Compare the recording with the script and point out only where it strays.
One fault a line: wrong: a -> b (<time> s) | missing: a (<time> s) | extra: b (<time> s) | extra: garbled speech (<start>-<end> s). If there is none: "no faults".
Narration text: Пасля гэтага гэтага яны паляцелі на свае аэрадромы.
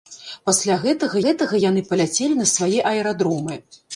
no faults